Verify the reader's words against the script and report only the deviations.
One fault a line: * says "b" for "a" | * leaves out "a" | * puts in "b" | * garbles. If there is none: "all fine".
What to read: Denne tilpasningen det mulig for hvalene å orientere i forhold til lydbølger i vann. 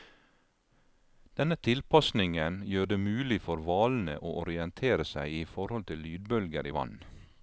* puts in "gjør"
* puts in "seg"